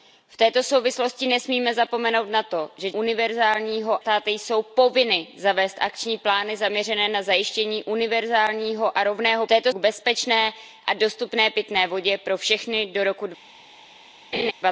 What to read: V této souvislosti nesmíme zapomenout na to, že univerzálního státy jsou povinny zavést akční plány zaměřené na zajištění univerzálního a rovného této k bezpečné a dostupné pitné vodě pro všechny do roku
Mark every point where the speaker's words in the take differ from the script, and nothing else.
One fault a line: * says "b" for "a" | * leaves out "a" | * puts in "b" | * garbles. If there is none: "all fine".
all fine